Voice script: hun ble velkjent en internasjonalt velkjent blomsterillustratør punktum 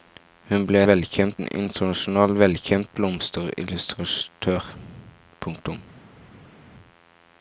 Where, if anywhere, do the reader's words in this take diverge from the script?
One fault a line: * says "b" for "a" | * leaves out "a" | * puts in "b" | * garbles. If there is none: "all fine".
all fine